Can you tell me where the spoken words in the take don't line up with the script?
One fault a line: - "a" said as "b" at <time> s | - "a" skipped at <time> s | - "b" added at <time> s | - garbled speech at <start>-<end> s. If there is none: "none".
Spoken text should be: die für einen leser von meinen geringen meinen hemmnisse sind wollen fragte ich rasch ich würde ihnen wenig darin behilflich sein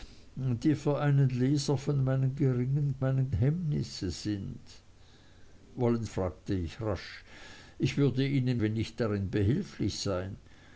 none